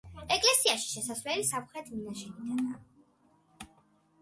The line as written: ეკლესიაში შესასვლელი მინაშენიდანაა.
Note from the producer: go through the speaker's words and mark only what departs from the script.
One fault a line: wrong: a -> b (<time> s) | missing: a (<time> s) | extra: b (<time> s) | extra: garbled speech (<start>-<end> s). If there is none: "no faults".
extra: სამხრეთ (1.5 s)